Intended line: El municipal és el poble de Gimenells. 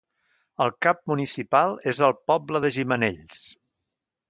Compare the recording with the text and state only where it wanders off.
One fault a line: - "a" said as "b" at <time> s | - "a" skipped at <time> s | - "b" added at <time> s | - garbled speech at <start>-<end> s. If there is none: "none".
- "cap" added at 0.8 s